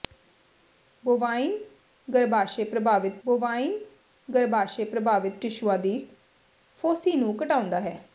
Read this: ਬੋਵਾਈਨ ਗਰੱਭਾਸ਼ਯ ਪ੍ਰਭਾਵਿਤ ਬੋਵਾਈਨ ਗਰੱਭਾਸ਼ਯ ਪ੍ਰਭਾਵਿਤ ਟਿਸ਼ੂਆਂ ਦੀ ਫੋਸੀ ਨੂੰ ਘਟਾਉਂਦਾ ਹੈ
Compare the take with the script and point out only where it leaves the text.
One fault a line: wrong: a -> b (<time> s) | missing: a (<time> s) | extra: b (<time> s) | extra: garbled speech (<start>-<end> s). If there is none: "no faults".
no faults